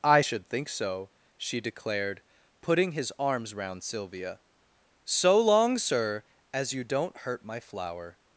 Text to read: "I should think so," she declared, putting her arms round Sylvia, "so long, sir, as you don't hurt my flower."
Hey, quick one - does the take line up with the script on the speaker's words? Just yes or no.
no